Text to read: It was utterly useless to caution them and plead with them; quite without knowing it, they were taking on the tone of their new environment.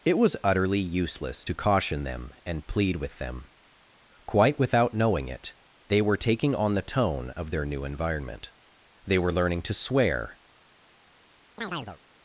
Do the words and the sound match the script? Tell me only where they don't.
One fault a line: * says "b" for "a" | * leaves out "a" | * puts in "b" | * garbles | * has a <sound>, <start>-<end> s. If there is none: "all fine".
* puts in "They were learning to swear"
* has a chirp, 11.6-12.0 s